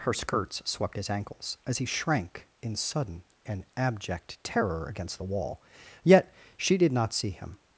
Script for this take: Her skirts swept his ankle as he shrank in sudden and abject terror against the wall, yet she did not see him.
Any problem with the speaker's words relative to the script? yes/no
yes